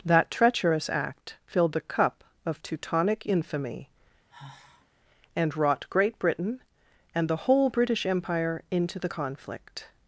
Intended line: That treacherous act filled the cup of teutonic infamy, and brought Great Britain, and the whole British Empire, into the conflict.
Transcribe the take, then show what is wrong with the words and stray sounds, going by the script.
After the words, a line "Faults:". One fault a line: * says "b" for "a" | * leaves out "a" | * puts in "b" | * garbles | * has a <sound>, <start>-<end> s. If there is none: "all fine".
That treacherous act filled the cup of teutonic infamy, and wrought Great Britain, and the whole British Empire, into the conflict.
Faults:
* has a sigh, 4.3-4.9 s
* says "wrought" for "brought"